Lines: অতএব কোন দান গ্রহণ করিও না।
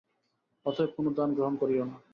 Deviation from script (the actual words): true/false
false